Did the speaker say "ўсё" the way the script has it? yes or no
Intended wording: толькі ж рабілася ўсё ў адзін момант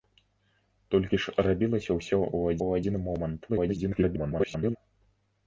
yes